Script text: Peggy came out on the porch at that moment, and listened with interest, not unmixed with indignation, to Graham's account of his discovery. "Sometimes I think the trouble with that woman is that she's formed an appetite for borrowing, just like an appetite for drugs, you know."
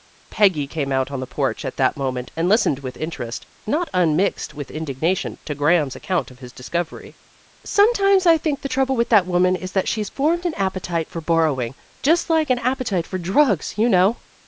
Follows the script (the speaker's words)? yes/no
yes